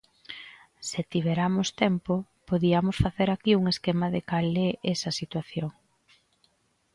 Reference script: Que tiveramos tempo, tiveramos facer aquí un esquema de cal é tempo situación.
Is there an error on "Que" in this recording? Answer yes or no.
yes